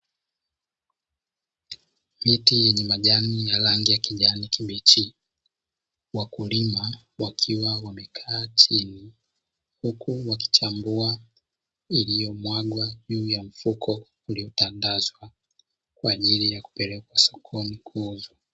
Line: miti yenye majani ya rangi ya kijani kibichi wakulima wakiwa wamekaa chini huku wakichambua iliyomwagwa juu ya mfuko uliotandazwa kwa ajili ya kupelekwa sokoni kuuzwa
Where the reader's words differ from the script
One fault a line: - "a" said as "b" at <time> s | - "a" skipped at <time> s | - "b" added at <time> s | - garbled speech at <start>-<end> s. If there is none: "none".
none